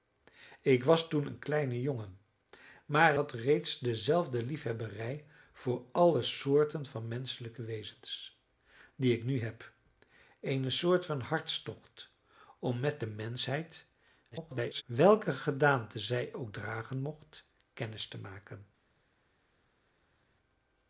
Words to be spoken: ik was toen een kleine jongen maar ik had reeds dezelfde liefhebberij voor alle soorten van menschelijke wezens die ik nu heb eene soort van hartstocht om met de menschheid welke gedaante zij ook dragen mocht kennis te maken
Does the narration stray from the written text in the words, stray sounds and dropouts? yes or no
yes